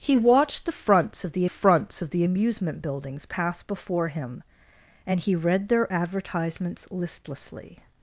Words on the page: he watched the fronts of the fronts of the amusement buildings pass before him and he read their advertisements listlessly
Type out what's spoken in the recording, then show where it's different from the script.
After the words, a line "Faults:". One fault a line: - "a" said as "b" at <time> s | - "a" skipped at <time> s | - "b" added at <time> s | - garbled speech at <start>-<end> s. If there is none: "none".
he watched the fronts of the fronts of the amusement buildings pass before him and he read their advertisements listlessly
Faults:
none